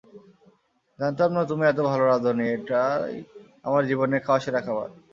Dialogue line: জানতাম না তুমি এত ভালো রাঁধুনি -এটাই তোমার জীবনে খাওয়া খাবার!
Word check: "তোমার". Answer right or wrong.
wrong